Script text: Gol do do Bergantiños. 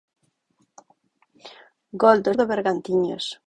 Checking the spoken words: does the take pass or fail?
pass